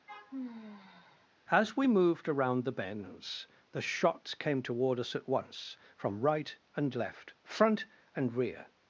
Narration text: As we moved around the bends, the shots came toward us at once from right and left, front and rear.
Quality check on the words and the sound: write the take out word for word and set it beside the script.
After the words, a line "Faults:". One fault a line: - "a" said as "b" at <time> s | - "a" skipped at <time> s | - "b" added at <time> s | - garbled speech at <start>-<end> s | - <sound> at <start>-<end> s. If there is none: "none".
As we moved around the bends, the shots came toward us at once from right and left, front and rear.
Faults:
- sigh at 0.1-1.3 s